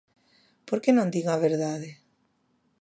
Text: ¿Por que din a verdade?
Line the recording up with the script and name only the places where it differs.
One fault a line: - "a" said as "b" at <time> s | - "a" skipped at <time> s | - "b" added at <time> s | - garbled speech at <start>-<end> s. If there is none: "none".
- "non" added at 0.9 s